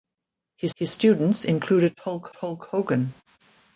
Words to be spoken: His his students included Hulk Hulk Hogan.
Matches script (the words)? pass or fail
pass